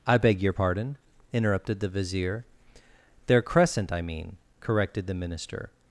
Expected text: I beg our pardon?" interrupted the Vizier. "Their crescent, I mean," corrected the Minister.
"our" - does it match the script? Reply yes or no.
no